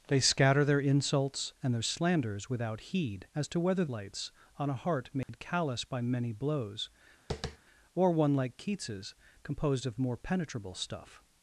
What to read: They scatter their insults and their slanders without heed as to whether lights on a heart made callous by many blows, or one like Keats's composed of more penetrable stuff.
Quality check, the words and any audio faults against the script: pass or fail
fail